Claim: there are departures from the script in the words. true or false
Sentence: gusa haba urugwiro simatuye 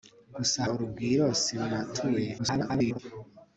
true